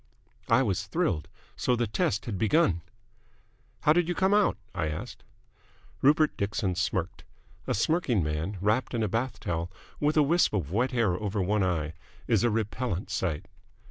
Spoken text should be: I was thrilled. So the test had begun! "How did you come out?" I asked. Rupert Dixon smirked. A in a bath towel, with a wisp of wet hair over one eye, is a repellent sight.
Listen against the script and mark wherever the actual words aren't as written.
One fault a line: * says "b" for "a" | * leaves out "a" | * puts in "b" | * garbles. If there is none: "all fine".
* puts in "smirking man wrapped"